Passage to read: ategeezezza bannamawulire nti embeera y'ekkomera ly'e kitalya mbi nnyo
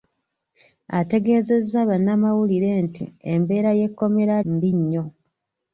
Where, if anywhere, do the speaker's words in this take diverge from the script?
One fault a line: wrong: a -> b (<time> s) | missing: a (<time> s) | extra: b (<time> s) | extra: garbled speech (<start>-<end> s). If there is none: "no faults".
missing: ly'e kitalya (4.3 s)